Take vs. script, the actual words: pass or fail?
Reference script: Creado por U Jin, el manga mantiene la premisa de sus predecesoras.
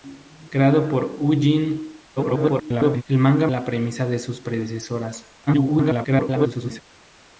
fail